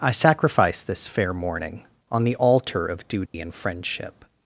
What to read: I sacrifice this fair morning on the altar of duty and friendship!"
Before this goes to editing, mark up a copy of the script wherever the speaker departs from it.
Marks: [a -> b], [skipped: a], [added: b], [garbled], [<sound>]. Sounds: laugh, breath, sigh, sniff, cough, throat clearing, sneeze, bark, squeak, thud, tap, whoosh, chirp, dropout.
I sacrifice this fair morning on the altar of duty [dropout] and friendship!"